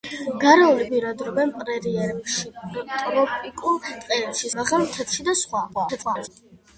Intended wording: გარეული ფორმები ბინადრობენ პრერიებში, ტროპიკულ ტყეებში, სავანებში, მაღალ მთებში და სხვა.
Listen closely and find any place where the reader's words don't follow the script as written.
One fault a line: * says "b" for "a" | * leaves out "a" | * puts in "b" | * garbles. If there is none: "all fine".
* leaves out "ფორმები"
* leaves out "სავანებში"
* garbles